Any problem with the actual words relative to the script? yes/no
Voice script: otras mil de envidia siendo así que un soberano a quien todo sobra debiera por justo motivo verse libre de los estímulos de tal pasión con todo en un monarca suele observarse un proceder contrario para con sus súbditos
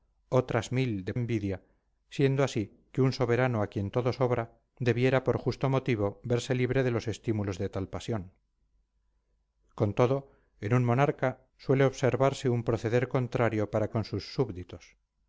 no